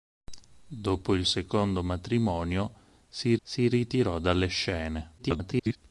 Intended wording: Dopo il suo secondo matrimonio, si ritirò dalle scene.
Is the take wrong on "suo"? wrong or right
wrong